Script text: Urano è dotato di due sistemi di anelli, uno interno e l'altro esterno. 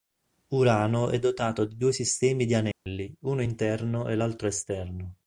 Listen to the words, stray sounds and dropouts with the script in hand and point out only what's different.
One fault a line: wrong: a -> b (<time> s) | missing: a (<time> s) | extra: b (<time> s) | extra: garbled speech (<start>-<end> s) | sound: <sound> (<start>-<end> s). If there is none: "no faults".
sound: dropout (2.7-2.9 s)